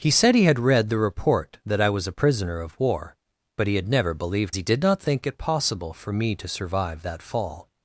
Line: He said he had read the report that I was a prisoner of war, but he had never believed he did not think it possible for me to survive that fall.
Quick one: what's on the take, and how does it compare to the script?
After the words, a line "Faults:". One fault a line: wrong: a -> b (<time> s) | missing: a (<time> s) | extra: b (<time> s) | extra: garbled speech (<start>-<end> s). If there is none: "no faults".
He said he had read the report that I was a prisoner of war, but he had never believed he did not think it possible for me to survive that fall.
Faults:
no faults